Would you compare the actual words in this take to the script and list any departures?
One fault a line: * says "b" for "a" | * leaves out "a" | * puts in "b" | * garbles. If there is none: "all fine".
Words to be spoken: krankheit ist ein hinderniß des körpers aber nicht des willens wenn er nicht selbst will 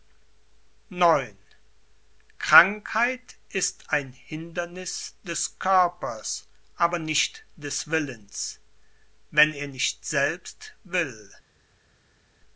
all fine